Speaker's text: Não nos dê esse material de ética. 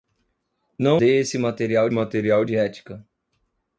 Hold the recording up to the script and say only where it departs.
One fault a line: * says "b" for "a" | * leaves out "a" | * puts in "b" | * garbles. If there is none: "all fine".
* leaves out "nos"
* puts in "material"